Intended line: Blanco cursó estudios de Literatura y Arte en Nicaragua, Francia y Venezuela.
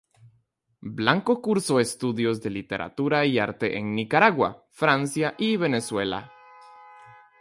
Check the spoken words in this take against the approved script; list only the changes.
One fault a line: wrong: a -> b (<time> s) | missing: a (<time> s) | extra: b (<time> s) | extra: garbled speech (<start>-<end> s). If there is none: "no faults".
no faults